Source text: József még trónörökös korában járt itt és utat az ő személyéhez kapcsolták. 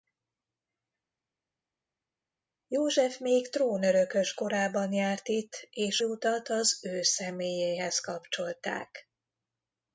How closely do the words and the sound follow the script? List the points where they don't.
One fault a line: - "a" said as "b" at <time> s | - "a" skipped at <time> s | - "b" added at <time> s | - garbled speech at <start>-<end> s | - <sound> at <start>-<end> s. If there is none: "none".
none